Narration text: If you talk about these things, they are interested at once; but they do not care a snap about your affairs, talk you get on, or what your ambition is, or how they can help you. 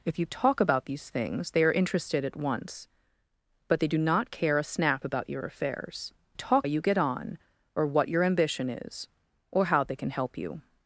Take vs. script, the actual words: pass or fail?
pass